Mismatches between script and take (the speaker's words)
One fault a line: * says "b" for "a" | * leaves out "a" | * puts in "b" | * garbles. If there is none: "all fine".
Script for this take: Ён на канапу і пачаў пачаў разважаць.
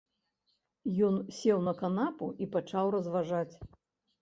* puts in "сеў"
* leaves out "пачаў"